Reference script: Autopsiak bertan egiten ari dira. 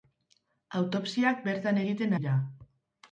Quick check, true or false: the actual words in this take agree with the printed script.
false